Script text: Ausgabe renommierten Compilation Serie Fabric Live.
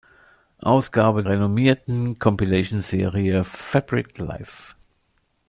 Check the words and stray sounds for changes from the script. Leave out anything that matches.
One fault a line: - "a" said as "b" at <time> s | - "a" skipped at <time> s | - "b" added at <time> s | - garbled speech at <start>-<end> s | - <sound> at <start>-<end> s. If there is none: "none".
none